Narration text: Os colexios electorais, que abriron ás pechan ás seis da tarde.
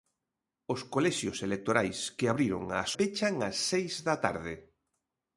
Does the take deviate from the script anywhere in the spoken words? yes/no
no